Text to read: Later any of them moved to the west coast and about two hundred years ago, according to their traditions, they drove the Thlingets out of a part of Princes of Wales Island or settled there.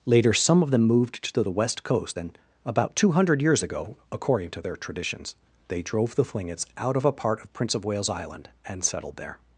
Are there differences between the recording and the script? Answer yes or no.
yes